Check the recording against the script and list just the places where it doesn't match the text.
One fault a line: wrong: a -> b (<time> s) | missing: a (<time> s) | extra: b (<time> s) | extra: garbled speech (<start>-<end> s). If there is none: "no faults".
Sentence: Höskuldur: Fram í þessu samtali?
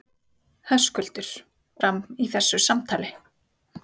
no faults